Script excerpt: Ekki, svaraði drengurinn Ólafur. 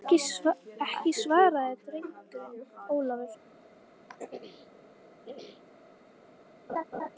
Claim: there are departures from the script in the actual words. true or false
false